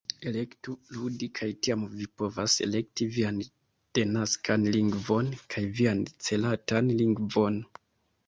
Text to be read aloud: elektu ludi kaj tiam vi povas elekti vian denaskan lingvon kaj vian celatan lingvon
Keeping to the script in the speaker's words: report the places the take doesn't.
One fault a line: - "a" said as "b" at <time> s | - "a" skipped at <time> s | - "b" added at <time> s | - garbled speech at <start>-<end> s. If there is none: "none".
none